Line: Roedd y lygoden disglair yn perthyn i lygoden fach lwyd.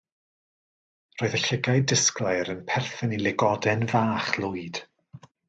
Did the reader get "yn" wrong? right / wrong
right